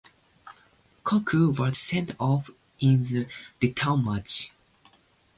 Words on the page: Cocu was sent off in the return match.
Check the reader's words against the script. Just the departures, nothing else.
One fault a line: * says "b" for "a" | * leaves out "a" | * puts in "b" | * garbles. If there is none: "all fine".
all fine